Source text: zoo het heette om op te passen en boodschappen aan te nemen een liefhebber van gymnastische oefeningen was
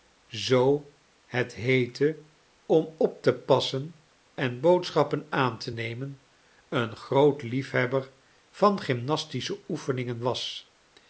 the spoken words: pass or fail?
fail